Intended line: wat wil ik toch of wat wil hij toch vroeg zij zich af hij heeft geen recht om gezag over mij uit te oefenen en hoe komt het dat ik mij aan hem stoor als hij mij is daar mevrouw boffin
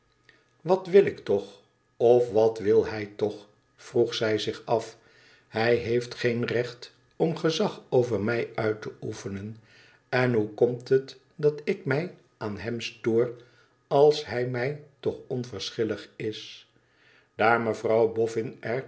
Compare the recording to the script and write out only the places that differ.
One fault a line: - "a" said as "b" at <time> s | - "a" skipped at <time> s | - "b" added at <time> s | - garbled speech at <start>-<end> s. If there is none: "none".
- "toch onverschillig" added at 15.0 s